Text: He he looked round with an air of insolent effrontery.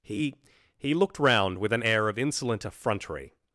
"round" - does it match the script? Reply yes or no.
yes